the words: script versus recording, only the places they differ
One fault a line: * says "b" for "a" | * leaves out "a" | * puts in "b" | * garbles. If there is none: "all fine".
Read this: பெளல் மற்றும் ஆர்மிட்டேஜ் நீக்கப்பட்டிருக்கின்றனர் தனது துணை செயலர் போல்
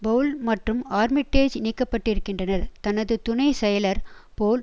all fine